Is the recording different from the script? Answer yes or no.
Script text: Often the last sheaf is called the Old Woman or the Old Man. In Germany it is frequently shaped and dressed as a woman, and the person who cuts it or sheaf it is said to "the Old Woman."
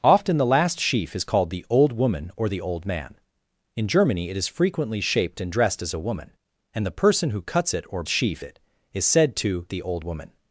no